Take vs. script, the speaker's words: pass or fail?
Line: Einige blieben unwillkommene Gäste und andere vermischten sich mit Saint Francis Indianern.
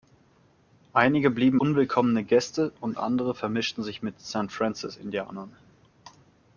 pass